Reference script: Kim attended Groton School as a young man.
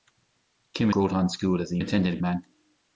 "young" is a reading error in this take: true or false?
true